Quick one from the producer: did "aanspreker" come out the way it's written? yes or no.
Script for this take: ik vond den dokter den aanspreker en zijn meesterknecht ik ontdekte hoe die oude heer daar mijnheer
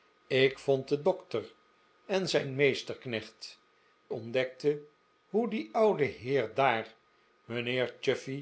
no